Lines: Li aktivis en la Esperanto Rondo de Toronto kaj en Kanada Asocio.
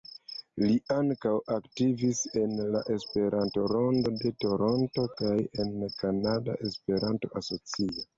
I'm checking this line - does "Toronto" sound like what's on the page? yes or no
yes